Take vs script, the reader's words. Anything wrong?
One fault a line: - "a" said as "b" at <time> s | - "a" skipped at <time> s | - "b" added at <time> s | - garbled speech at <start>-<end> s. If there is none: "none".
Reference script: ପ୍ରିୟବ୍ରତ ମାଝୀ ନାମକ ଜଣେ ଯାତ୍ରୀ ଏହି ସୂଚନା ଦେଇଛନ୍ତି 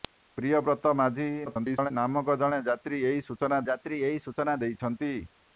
- garbled speech at 1.5-1.9 s
- "ଯାତ୍ରୀ ଏହି ସୂଚନା" added at 3.7 s